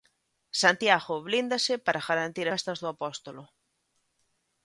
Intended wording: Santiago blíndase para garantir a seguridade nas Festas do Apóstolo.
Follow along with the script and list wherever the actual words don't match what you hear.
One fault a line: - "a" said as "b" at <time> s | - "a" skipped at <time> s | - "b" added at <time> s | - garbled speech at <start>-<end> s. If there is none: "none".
- "a seguridade nas" skipped at 2.5 s